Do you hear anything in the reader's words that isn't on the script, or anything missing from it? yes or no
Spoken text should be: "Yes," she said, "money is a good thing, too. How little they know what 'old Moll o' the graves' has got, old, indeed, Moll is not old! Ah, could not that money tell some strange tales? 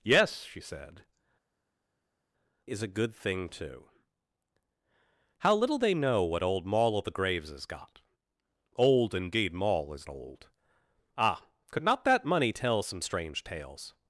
yes